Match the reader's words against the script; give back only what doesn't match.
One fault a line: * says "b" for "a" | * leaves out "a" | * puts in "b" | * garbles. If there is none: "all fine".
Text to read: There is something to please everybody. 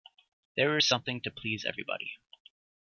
all fine